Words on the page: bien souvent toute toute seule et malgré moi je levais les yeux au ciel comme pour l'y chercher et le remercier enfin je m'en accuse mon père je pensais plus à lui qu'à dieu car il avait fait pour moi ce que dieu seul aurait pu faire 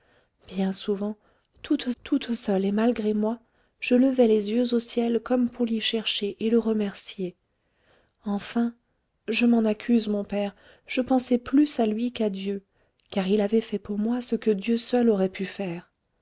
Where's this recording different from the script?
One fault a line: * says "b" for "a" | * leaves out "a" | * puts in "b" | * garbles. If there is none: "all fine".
all fine